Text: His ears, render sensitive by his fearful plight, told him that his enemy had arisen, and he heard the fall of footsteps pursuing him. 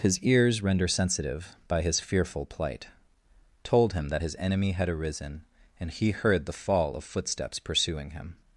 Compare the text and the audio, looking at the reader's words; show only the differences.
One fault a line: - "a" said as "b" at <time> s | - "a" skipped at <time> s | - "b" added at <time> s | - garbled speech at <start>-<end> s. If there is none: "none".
none